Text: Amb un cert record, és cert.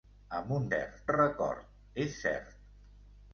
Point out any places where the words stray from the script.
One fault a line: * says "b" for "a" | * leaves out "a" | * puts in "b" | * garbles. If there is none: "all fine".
all fine